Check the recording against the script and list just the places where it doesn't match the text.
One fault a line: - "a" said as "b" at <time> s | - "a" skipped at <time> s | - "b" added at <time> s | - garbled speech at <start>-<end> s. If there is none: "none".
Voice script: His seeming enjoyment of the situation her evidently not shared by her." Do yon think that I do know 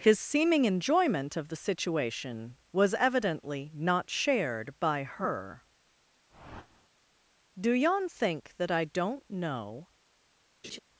- "her" said as "was" at 2.7 s
- "do" said as "don't" at 8.8 s